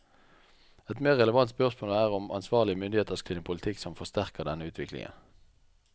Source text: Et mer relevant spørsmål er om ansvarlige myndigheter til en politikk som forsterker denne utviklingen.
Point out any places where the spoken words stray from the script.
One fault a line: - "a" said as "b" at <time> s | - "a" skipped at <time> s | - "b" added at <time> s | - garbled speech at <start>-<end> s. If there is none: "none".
none